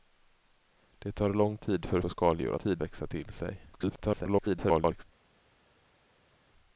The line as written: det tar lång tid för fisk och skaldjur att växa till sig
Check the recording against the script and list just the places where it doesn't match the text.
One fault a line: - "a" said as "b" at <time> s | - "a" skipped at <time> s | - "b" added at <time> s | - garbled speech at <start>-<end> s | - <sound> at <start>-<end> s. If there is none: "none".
- "fisk" skipped at 2.0 s
- "att" said as "tid" at 2.5 s
- garbled speech at 3.7-5.0 s